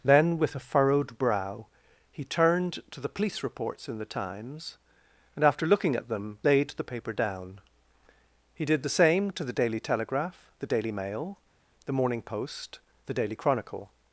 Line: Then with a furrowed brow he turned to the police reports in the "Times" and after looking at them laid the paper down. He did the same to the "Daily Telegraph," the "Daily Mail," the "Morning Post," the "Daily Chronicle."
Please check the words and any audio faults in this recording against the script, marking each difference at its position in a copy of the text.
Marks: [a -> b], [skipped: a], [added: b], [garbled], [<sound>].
Then with a furrowed brow he turned to the police reports in the "Times" and after looking at them laid the paper down. He did the same to the "Daily Telegraph," the "Daily Mail," the "Morning Post," the "Daily Chronicle."